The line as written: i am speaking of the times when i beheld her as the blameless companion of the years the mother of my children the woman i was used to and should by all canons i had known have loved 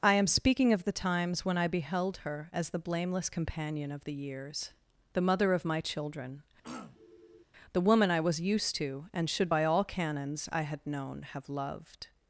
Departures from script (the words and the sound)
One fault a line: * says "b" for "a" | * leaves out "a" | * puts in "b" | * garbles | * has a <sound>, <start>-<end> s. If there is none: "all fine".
* has a throat clearing, 6.6-7.4 s